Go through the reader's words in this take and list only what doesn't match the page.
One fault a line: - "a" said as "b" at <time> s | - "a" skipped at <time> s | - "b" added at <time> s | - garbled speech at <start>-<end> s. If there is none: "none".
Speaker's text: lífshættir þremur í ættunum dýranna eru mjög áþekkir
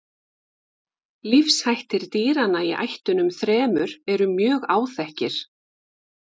- "þremur" said as "dýranna" at 2.1 s
- "dýranna" said as "þremur" at 3.4 s